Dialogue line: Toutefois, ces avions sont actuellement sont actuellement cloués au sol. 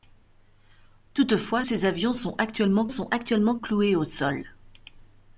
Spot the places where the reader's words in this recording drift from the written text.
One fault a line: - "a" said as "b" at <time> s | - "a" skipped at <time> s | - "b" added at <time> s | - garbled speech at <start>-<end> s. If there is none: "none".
none